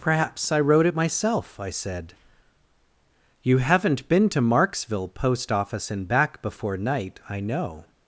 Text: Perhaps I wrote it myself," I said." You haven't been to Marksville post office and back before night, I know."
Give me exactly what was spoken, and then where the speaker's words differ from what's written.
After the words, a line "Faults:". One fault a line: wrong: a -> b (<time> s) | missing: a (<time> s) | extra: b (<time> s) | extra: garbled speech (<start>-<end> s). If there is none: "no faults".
Perhaps I wrote it myself," I said." You haven't been to Marksville post office and back before night, I know."
Faults:
no faults